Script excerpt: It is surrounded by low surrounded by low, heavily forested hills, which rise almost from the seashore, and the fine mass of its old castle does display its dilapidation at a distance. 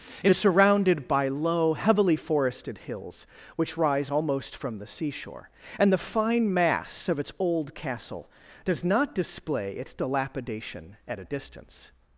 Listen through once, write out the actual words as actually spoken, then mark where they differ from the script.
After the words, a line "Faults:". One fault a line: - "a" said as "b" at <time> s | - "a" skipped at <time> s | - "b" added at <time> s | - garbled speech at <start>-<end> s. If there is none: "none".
It is surrounded by low, heavily forested hills, which rise almost from the seashore, and the fine mass of its old castle does not display its dilapidation at a distance.
Faults:
- "surrounded by low" skipped at 1.7 s
- "not" added at 8.8 s